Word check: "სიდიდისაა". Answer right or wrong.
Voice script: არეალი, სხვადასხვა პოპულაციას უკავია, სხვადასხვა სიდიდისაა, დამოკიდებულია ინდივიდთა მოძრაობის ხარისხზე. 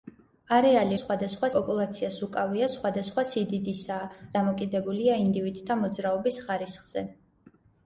right